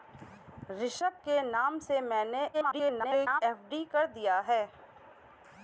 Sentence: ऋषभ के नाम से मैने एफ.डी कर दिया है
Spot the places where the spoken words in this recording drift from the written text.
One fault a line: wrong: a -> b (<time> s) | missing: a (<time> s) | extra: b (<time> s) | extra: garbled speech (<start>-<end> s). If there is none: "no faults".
extra: garbled speech (2.5-3.4 s)